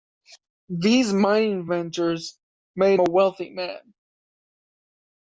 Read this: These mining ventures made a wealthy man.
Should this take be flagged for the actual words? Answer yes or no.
no